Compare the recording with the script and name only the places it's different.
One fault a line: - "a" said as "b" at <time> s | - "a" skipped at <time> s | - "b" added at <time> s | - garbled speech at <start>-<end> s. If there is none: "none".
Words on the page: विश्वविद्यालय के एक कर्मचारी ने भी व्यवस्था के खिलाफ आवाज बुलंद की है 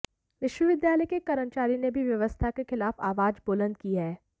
none